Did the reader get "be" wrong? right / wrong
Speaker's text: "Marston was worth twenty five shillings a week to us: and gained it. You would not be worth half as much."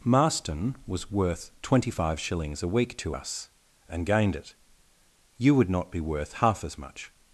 right